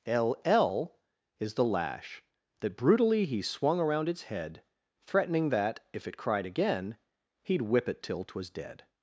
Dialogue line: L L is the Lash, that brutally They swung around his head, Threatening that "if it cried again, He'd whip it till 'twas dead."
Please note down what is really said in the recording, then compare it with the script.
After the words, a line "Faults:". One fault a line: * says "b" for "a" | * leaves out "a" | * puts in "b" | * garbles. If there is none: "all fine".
L L is the Lash, that brutally He swung around its head, Threatening that "if it cried again, He'd whip it till 'twas dead."
Faults:
* says "He" for "They"
* says "its" for "his"